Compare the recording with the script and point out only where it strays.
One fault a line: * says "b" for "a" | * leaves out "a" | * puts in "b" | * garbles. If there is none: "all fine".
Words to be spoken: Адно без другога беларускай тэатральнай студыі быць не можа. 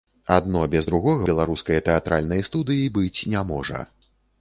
all fine